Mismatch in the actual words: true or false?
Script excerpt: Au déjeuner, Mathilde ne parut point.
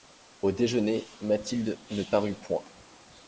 false